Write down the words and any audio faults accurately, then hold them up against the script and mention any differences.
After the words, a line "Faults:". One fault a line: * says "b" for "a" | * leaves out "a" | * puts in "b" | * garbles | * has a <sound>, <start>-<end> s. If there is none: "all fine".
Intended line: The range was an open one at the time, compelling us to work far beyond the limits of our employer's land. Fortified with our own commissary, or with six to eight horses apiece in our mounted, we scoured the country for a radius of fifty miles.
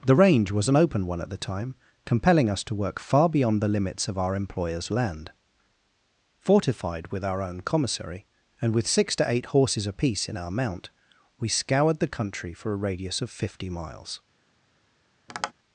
The range was an open one at the time, compelling us to work far beyond the limits of our employer's land. Fortified with our own commissary, and with six to eight horses apiece in our mount, we scoured the country for a radius of fifty miles.
Faults:
* says "and" for "or"
* says "mount" for "mounted"
* has a tap, 15.3-15.5 s